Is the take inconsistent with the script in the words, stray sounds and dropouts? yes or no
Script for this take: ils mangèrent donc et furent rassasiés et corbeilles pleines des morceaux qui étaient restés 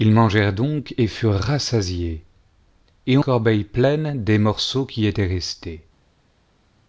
no